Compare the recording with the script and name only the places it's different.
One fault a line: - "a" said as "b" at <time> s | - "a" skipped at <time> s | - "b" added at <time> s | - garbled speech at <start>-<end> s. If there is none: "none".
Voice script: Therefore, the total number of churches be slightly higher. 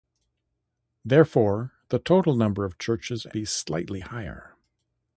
none